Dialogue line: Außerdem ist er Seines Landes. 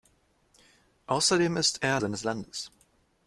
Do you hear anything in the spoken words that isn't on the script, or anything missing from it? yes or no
no